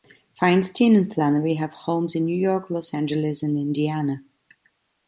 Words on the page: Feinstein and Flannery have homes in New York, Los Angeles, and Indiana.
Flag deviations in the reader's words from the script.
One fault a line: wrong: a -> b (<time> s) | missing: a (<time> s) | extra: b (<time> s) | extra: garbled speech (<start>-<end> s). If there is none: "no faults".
no faults